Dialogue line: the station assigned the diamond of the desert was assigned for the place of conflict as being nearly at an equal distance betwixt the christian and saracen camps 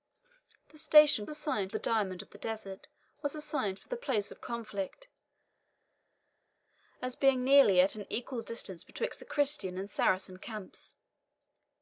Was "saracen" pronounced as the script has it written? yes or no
yes